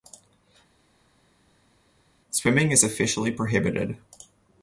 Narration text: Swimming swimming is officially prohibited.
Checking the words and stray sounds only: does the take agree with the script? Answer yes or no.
no